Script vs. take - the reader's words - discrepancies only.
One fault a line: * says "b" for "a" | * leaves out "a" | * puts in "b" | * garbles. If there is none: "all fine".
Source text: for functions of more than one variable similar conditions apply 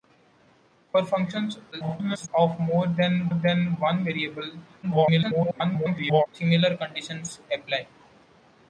* garbles
* puts in "than"
* garbles